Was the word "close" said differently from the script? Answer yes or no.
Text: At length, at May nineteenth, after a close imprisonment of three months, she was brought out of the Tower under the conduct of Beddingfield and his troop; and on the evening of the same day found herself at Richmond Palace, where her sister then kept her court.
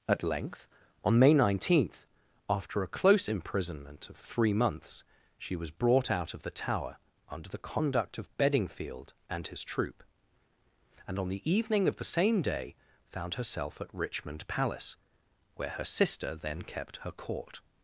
no